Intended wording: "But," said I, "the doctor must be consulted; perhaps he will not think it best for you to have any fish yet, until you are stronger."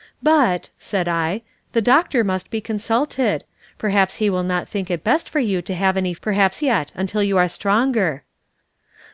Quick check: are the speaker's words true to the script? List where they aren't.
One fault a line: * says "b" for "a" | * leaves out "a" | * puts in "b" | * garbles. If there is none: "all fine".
* says "perhaps" for "fish"